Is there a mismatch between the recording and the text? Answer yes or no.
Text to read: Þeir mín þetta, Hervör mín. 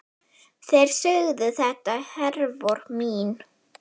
yes